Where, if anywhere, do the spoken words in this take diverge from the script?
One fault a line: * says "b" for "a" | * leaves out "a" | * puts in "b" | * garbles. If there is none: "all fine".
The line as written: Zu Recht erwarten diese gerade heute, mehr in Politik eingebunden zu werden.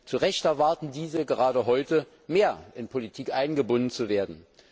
all fine